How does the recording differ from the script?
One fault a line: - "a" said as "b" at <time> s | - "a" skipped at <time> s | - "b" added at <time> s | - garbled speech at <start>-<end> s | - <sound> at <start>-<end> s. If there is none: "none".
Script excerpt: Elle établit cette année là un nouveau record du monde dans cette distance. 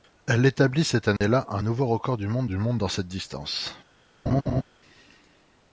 - dropout at 1.2-1.2 s
- "du monde" added at 2.5 s
- laugh at 4.3-4.6 s